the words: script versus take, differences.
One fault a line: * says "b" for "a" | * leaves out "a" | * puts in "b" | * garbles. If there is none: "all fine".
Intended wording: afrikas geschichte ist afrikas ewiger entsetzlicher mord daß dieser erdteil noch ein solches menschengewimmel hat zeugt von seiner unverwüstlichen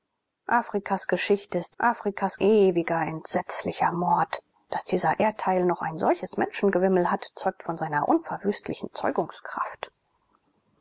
all fine